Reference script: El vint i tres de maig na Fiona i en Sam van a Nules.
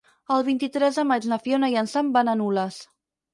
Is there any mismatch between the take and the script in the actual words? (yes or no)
no